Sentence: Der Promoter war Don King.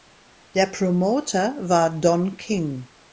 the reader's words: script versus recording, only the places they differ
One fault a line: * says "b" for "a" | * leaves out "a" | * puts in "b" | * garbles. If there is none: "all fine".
all fine